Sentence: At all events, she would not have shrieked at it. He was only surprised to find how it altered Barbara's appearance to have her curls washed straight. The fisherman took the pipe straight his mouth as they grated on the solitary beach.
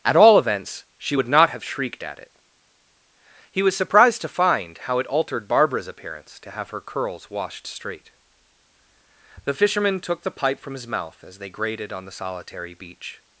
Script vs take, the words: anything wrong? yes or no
yes